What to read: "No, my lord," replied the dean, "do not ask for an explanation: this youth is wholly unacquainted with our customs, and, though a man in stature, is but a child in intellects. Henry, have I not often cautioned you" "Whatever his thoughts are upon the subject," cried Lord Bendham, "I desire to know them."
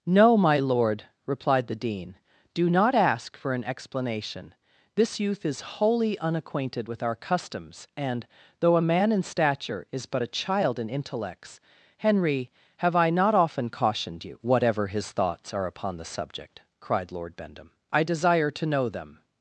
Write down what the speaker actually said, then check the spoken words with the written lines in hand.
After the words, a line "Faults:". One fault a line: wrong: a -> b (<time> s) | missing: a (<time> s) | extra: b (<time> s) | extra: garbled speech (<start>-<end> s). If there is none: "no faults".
"No, my lord," replied the dean, "do not ask for an explanation: this youth is wholly unacquainted with our customs, and, though a man in stature, is but a child in intellects. Henry, have I not often cautioned you" "Whatever his thoughts are upon the subject," cried Lord Bendham, "I desire to know them."
Faults:
no faults